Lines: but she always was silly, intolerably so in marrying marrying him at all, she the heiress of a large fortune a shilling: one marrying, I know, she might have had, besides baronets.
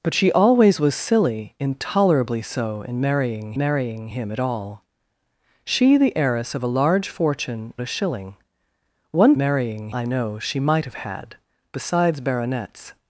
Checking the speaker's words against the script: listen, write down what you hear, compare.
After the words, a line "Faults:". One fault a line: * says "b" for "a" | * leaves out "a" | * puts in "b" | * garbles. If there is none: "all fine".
but she always was silly, intolerably so in marrying marrying him at all, she the heiress of a large fortune a shilling: one marrying, I know, she might have had, besides baronets.
Faults:
all fine